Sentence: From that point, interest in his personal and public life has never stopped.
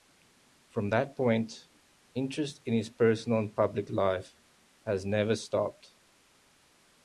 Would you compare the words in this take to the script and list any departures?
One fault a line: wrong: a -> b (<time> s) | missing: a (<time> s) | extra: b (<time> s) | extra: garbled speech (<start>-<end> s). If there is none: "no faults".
no faults